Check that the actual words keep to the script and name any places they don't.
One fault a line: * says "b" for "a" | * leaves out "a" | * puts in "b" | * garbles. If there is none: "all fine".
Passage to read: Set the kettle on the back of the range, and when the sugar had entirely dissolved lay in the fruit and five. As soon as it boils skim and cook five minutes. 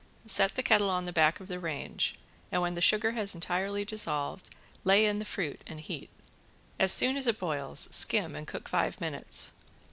* says "has" for "had"
* says "heat" for "five"